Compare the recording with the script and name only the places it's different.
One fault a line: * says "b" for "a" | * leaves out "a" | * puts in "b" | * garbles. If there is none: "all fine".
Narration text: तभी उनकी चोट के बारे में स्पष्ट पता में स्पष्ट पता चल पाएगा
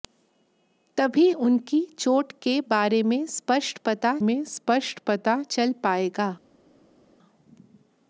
all fine